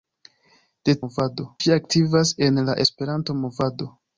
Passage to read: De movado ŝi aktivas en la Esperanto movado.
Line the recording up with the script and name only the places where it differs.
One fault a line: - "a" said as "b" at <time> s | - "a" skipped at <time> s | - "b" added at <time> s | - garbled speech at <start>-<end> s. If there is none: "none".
none